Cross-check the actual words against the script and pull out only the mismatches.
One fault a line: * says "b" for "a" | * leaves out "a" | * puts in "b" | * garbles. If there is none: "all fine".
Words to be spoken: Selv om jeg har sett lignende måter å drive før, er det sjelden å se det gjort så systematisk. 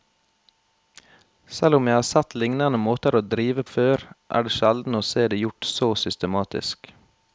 all fine